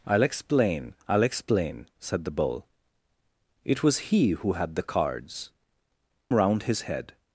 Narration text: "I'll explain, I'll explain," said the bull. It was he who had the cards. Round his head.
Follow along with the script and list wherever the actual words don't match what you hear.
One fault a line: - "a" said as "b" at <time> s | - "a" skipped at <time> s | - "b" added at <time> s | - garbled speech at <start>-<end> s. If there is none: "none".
none